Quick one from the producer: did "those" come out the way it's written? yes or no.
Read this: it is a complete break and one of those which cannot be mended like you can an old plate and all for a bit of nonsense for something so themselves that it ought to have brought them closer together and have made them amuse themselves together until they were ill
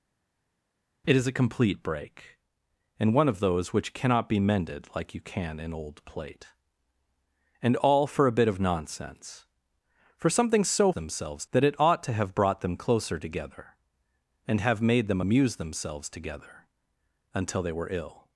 yes